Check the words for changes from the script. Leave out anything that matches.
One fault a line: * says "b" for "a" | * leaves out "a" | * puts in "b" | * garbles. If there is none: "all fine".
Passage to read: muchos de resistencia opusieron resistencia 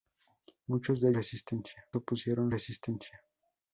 all fine